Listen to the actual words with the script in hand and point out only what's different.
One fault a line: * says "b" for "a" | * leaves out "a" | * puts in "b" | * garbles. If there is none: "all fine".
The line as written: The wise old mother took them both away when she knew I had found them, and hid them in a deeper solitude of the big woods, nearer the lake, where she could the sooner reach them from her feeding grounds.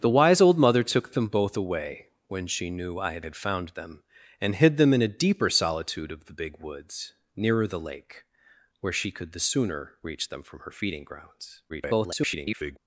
* puts in "had"
* garbles